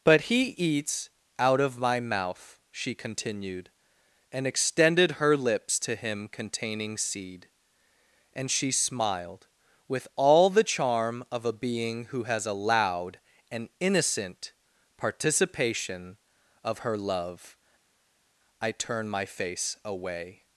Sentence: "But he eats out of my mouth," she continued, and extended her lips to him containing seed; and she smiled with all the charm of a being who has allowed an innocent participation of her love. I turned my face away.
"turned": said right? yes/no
no